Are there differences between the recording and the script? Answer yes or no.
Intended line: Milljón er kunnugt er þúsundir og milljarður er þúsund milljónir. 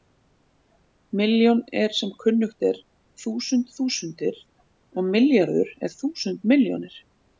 yes